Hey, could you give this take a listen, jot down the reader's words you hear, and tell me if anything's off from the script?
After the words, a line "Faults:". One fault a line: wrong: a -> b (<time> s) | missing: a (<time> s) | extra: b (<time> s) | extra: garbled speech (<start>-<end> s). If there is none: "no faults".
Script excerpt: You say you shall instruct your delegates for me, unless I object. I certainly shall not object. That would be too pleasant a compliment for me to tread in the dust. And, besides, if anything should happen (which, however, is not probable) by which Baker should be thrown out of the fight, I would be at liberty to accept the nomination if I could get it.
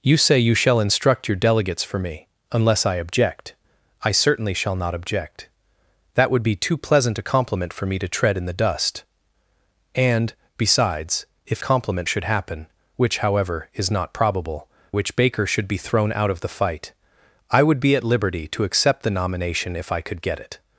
You say you shall instruct your delegates for me, unless I object. I certainly shall not object. That would be too pleasant a compliment for me to tread in the dust. And, besides, if compliment should happen (which, however, is not probable) which Baker should be thrown out of the fight, I would be at liberty to accept the nomination if I could get it.
Faults:
wrong: anything -> compliment (11.6 s)
missing: by (14.7 s)